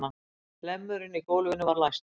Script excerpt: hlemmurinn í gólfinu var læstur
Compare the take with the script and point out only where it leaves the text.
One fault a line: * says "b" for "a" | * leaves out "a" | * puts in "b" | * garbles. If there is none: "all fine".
all fine